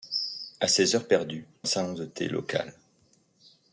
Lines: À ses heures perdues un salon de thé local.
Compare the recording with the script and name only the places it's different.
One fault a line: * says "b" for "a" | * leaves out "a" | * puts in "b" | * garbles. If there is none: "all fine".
all fine